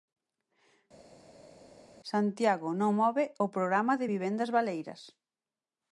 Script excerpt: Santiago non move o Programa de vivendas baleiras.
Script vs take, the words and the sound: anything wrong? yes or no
no